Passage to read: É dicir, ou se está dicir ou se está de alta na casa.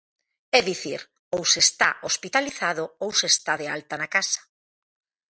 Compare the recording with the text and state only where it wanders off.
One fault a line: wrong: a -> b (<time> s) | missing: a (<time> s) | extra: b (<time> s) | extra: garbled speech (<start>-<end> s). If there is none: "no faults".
wrong: dicir -> hospitalizado (2.1 s)